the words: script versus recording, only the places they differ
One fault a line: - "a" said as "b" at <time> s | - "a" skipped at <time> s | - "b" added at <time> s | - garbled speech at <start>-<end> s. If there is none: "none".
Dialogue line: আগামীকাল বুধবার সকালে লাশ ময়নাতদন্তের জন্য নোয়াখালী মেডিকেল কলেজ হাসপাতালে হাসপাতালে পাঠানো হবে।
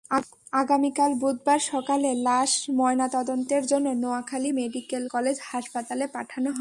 - "হাসপাতালে" skipped at 6.1 s